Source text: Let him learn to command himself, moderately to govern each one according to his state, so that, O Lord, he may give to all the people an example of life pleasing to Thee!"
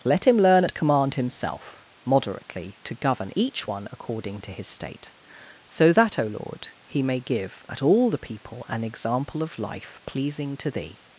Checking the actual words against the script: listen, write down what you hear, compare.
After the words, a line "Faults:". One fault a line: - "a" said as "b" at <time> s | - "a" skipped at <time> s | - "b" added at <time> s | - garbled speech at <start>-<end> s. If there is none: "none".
Let him learn at command himself, moderately to govern each one according to his state, so that, O Lord, he may give at all the people an example of life pleasing to Thee!"
Faults:
- "to" said as "at" at 0.6 s
- "to" said as "at" at 7.7 s